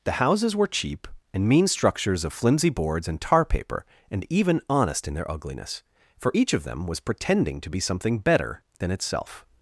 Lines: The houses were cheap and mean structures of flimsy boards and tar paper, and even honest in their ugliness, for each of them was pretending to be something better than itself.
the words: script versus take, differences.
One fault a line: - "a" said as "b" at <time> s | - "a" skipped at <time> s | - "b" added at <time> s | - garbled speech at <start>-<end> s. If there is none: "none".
none